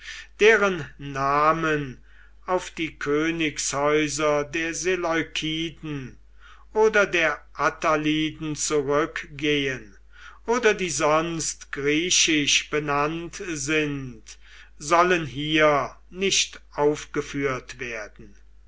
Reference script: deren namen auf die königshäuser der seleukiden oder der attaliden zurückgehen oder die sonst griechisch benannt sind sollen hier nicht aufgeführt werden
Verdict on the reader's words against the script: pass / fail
pass